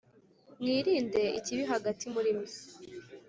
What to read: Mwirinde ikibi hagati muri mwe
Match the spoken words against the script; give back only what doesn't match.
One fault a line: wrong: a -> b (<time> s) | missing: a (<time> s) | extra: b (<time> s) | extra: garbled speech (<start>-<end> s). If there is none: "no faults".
no faults